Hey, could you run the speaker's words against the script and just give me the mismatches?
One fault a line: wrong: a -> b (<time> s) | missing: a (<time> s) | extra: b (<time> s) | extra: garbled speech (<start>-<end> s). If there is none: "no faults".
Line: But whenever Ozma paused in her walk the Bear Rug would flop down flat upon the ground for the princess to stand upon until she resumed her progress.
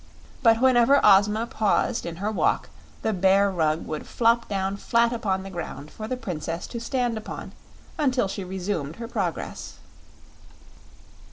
no faults